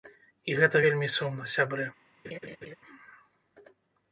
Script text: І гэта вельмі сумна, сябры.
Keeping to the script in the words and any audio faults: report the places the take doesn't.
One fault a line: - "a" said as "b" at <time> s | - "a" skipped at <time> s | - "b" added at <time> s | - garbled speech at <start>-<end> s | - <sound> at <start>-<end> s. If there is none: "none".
- laugh at 2.2-2.8 s